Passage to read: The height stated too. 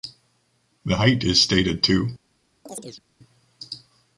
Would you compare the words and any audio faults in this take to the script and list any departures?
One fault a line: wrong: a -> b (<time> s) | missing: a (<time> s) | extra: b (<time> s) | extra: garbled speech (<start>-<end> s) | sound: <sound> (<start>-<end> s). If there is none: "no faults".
extra: is (1.2 s)
sound: chirp (2.7-3.0 s)